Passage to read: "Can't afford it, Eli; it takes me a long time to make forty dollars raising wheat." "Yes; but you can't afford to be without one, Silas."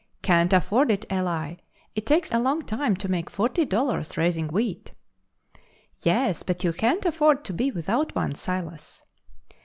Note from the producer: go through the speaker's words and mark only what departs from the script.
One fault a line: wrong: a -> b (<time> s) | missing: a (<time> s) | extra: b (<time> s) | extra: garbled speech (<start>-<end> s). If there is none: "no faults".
missing: me (2.3 s)